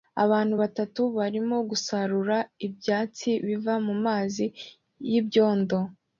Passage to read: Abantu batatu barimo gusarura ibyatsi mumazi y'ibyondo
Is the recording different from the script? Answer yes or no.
yes